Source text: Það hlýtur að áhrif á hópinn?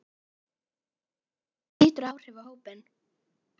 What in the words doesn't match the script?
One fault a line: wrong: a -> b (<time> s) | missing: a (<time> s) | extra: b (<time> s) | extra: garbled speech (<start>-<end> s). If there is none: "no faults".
no faults